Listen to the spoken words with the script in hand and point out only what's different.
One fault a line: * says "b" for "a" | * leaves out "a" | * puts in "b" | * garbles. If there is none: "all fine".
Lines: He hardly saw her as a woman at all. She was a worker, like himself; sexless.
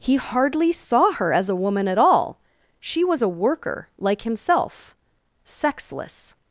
all fine